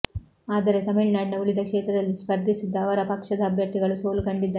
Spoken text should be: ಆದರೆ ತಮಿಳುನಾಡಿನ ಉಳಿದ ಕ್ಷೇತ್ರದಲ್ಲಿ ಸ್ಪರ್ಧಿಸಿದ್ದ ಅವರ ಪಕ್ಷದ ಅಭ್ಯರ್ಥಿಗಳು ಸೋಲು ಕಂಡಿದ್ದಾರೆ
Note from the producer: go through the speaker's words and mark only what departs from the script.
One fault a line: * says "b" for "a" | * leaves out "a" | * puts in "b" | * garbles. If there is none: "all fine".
all fine